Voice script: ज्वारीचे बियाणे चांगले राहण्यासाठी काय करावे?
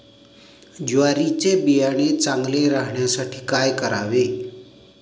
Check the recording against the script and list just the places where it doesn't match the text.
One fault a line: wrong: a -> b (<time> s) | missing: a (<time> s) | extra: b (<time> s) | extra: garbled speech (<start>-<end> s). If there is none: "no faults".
no faults